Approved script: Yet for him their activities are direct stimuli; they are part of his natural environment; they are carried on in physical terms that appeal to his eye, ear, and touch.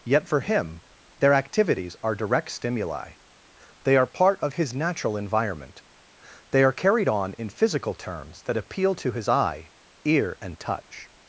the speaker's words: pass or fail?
pass